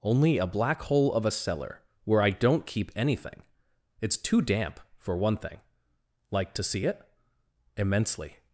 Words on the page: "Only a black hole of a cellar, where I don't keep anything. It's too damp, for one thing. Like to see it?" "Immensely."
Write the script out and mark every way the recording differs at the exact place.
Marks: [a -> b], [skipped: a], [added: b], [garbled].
"Only a black hole of a cellar, where I don't keep anything. It's too damp, for one thing. Like to see it?" "Immensely."